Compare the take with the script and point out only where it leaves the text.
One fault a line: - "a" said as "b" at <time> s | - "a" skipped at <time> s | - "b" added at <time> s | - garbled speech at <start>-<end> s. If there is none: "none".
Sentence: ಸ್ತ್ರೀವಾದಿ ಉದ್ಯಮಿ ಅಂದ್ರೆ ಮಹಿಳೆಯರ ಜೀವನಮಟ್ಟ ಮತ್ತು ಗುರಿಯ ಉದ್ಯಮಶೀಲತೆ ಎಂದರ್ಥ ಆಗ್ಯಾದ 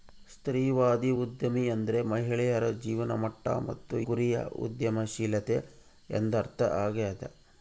none